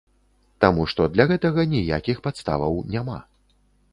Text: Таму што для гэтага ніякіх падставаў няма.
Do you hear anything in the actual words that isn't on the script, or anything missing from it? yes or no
no